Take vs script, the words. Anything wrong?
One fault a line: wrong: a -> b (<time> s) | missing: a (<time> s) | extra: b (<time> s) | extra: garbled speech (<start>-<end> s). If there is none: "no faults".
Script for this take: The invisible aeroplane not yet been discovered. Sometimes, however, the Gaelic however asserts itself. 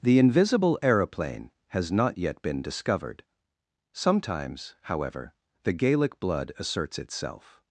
extra: has (1.7 s)
wrong: however -> blood (6.2 s)